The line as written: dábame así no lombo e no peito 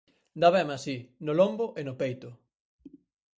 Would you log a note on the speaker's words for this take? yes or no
no